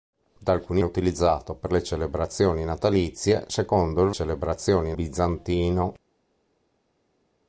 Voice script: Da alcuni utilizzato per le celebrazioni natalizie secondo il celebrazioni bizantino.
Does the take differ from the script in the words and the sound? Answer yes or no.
no